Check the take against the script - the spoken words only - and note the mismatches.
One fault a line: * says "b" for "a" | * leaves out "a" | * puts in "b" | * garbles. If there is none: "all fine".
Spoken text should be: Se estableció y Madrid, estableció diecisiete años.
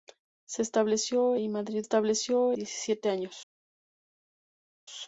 all fine